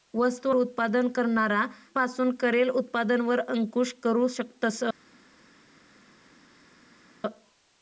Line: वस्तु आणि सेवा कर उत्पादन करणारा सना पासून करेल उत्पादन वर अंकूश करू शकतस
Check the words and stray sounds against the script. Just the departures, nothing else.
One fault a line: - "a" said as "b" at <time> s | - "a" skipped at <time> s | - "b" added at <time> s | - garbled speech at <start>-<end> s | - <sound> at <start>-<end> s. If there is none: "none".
- "आणि सेवा कर" skipped at 0.5 s
- "सना" skipped at 1.6 s